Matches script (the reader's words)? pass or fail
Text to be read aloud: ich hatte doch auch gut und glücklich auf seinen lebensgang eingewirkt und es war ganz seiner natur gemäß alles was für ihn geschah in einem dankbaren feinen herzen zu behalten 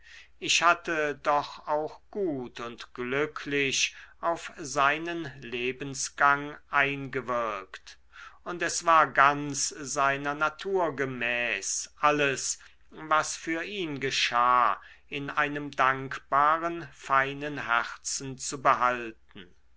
pass